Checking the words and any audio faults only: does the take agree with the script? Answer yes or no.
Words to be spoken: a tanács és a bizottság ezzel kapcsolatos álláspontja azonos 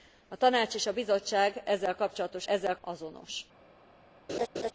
no